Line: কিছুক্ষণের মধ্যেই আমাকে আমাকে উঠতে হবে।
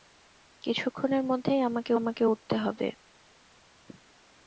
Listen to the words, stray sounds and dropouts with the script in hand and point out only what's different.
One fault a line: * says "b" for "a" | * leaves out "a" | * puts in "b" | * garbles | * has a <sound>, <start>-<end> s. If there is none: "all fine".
all fine